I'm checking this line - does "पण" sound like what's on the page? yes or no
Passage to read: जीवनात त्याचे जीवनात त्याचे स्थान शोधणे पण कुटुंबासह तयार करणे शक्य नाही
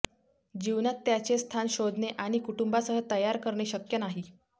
no